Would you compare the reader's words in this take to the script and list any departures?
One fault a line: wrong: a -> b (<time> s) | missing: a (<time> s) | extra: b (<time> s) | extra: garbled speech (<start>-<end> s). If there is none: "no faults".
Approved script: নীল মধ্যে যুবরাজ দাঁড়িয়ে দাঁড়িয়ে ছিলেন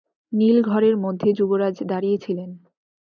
extra: ঘরের (0.6 s)
missing: দাঁড়িয়ে (2.2 s)